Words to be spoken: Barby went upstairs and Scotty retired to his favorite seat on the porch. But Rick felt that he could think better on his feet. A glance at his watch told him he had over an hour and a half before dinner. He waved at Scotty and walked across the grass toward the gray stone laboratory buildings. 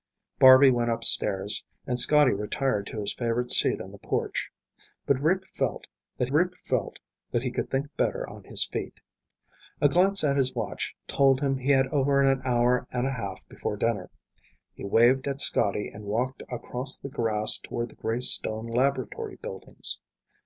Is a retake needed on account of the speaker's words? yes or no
yes